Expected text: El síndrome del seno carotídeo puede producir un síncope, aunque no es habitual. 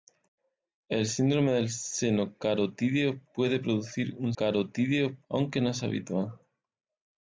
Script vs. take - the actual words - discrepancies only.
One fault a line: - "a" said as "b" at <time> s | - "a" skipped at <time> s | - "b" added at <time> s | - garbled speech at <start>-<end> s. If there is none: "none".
- "síncope" said as "carotídeo" at 4.3 s